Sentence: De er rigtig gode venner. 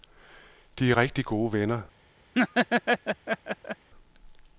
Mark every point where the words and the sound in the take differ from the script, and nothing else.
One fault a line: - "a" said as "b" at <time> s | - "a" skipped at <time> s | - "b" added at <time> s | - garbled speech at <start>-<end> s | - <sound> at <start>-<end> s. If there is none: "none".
- laugh at 2.3-3.9 s